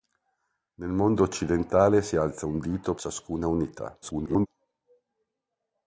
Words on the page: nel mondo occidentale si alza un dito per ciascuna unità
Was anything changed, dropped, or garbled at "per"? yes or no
yes